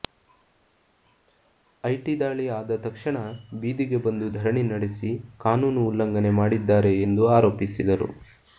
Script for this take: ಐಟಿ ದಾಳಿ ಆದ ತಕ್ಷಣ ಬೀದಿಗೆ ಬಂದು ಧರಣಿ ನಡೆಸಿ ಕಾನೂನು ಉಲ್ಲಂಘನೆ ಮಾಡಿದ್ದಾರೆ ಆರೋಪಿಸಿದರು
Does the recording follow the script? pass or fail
fail